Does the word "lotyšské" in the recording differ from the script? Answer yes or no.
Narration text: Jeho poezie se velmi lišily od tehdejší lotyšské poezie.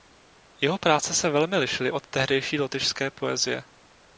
no